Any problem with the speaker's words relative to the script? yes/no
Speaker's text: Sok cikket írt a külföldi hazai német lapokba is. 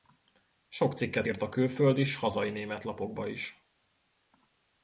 yes